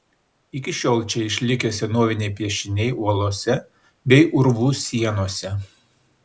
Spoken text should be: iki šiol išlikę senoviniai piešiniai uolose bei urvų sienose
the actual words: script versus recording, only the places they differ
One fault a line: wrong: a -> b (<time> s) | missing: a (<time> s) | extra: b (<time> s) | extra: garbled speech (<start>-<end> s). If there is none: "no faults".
extra: čia (1.1 s)